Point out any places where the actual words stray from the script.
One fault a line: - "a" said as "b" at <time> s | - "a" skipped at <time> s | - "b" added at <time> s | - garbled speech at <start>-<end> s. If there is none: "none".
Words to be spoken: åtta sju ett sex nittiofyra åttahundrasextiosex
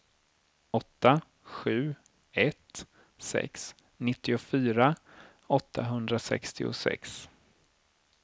none